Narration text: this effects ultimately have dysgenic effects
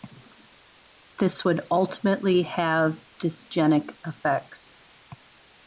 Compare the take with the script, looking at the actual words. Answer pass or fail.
fail